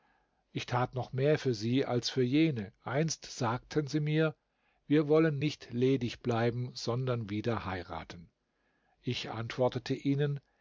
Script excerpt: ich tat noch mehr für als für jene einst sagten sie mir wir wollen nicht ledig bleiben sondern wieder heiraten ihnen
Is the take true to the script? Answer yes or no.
no